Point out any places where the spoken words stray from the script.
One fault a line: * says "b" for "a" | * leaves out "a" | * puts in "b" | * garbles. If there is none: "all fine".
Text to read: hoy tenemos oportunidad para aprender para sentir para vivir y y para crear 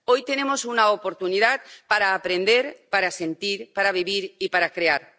* puts in "una"
* leaves out "y"